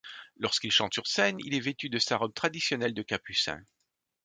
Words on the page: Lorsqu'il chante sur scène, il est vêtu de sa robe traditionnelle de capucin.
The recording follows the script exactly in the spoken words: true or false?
true